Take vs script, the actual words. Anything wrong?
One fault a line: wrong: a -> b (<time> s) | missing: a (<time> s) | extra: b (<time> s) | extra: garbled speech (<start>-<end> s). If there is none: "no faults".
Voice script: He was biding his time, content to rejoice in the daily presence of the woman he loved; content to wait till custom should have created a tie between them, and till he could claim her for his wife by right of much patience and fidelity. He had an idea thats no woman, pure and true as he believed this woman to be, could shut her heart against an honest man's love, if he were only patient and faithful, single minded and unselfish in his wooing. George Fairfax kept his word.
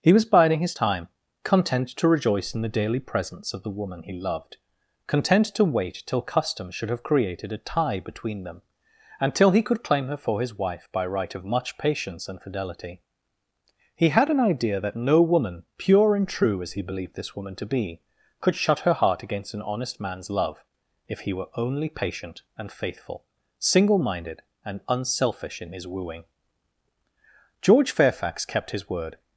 wrong: thats -> that (14.8 s)